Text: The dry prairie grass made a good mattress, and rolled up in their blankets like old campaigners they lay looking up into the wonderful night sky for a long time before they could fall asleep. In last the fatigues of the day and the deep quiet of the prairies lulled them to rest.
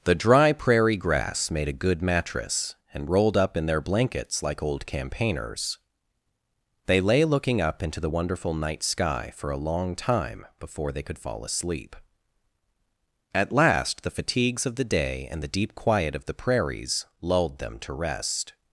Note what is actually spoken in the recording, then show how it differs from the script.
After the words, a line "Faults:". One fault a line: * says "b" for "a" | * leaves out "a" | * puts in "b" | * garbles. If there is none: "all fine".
The dry prairie grass made a good mattress, and rolled up in their blankets like old campaigners they lay looking up into the wonderful night sky for a long time before they could fall asleep. At last the fatigues of the day and the deep quiet of the prairies lulled them to rest.
Faults:
* says "At" for "In"